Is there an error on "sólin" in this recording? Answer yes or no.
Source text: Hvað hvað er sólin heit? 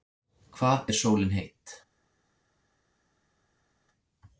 no